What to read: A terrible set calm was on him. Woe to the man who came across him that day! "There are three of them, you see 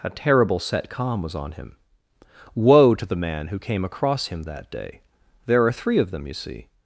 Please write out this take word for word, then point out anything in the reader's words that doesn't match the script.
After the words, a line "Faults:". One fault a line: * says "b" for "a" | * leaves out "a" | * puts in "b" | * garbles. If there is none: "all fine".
A terrible set calm was on him. Woe to the man who came across him that day! "There are three of them, you see
Faults:
all fine